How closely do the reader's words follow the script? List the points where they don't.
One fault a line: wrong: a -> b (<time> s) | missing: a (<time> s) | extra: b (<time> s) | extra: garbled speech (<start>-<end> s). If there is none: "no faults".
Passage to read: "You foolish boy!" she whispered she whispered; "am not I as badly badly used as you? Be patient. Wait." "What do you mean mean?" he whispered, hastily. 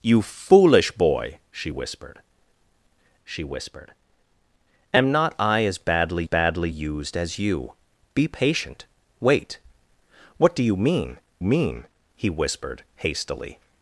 no faults